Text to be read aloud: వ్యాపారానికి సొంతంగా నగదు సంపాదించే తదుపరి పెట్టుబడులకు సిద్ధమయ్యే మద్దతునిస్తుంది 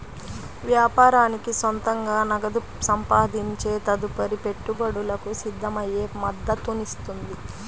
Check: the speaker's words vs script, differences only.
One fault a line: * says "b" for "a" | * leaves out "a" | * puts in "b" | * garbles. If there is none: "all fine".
all fine